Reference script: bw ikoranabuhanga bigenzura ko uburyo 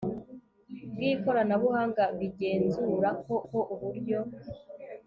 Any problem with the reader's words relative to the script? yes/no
yes